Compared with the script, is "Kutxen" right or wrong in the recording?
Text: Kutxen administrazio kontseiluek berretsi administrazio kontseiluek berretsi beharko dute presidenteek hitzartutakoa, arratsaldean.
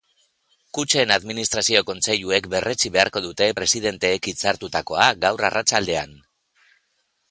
right